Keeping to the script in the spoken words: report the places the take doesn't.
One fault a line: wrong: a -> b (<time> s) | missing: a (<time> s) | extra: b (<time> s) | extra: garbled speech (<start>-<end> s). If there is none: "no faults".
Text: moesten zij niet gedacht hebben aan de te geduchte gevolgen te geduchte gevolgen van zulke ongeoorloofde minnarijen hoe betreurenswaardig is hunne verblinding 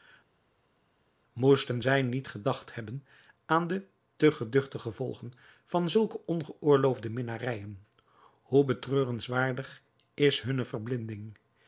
missing: te geduchte gevolgen (5.3 s)